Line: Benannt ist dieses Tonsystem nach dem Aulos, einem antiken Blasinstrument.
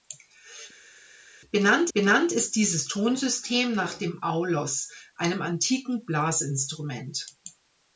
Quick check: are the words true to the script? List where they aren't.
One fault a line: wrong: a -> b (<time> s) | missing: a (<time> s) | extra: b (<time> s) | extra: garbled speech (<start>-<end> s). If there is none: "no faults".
extra: benannt (1.9 s)